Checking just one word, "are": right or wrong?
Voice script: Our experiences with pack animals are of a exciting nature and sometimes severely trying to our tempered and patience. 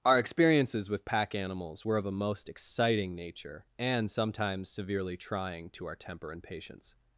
wrong